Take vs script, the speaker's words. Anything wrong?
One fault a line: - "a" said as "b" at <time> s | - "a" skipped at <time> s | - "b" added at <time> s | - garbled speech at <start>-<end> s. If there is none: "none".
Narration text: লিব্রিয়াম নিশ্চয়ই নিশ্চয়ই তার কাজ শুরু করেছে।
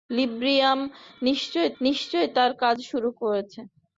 none